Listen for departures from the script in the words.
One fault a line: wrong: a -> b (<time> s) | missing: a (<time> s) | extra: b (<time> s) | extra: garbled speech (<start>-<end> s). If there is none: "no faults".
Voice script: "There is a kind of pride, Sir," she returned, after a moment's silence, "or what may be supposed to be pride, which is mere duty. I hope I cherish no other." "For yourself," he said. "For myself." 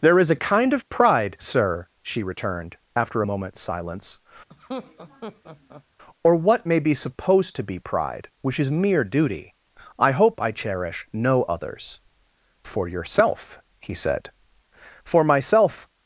wrong: other -> others (11.4 s)